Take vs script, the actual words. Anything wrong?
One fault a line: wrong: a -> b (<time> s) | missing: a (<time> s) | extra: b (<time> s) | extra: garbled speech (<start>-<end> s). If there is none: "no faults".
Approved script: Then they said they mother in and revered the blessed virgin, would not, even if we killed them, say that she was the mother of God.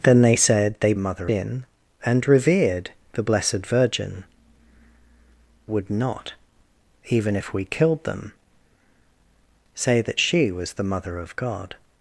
no faults